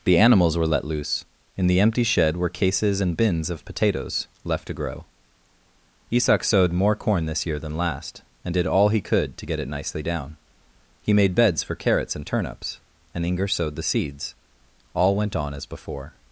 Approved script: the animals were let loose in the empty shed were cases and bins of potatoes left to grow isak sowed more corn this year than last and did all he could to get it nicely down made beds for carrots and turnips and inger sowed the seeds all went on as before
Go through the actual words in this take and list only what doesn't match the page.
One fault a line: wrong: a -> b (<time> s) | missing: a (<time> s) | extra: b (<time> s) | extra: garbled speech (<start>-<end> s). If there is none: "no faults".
extra: he (11.0 s)